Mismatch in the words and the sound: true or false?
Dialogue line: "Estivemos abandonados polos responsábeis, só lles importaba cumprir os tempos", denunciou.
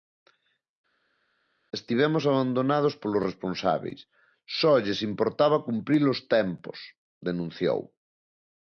false